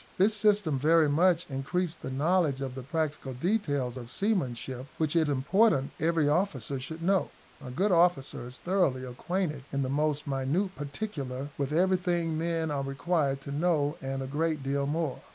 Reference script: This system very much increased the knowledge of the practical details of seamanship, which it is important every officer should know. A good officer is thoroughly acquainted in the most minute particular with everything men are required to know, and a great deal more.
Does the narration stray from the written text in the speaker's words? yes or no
yes